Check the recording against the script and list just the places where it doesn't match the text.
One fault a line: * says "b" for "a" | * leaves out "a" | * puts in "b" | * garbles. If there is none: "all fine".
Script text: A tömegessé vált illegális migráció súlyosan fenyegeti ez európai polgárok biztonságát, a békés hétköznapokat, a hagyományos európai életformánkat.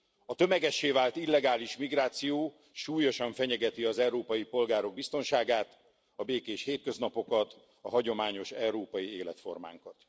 * says "az" for "ez"